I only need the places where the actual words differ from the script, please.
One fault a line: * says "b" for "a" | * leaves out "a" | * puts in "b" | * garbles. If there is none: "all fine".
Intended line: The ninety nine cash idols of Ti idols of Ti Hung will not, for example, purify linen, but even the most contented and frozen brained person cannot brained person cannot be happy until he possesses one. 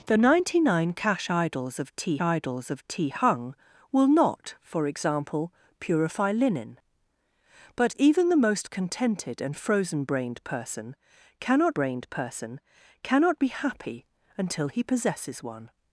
all fine